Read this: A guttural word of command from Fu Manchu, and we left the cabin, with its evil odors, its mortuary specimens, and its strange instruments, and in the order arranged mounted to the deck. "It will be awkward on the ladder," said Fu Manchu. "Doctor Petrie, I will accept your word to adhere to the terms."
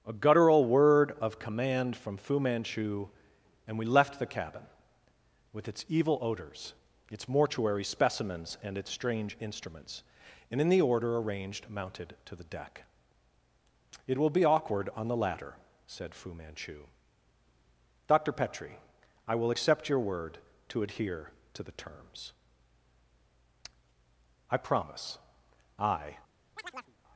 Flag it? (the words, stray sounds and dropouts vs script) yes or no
yes